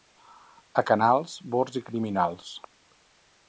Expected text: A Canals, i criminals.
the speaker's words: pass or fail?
fail